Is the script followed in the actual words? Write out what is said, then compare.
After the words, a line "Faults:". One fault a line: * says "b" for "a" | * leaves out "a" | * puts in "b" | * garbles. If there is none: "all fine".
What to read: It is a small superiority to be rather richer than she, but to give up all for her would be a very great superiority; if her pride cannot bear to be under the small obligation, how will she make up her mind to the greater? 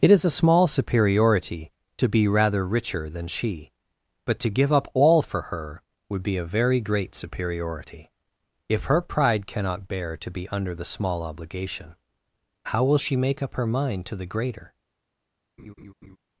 It is a small superiority to be rather richer than she, but to give up all for her would be a very great superiority; if her pride cannot bear to be under the small obligation, how will she make up her mind to the greater?
Faults:
all fine